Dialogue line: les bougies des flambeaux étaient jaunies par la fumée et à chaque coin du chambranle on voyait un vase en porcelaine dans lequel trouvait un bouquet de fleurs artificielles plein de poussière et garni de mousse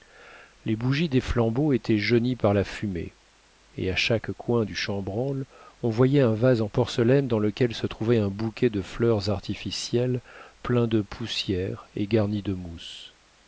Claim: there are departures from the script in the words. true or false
true